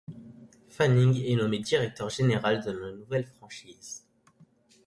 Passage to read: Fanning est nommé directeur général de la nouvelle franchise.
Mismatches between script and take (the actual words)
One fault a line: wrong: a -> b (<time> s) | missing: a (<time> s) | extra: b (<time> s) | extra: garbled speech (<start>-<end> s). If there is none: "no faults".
no faults